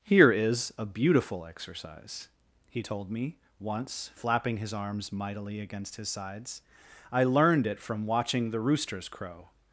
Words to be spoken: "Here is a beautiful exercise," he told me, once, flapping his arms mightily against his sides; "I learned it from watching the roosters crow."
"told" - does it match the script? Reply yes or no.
yes